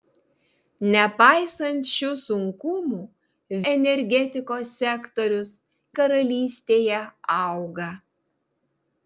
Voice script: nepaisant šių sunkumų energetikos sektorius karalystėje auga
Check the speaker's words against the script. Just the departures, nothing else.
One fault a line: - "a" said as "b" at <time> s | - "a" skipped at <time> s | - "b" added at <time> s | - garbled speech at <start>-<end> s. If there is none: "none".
none